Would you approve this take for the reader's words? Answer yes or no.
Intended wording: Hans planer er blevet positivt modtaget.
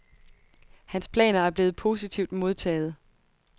yes